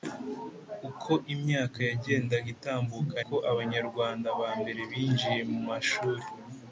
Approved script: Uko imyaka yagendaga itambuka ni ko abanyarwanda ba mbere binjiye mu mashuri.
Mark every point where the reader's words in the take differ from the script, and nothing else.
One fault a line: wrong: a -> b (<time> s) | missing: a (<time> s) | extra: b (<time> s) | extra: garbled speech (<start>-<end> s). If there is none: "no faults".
missing: ni (3.2 s)